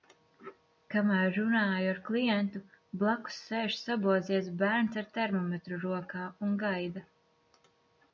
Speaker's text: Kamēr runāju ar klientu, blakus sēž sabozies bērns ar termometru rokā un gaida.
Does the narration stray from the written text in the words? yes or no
no